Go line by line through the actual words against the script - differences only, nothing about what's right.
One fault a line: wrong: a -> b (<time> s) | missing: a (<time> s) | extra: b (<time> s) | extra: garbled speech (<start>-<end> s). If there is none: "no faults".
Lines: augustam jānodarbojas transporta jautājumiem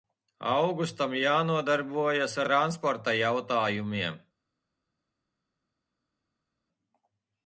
no faults